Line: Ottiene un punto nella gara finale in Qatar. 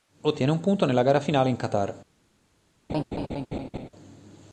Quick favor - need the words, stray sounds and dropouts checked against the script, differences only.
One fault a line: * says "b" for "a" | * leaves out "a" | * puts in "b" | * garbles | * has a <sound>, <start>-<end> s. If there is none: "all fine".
* has a laugh, 2.9-3.9 s